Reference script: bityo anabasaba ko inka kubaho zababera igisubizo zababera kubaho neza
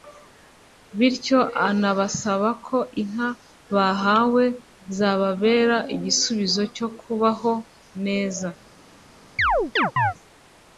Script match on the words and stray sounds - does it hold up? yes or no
no